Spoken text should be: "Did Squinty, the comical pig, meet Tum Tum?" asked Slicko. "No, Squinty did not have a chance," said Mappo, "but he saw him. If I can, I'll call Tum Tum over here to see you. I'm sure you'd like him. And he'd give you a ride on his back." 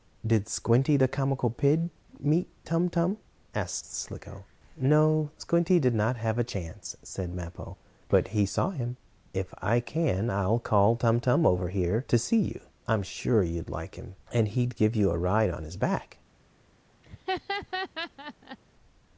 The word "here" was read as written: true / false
true